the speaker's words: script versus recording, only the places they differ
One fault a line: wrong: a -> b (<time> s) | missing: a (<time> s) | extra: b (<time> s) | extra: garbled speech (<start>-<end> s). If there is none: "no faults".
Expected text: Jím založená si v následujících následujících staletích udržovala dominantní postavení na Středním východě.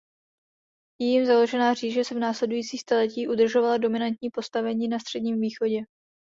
extra: říše (1.7 s)
missing: následujících (2.8 s)